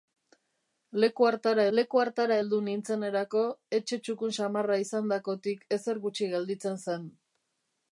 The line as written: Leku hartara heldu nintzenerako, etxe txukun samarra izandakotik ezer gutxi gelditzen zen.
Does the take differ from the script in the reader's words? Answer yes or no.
yes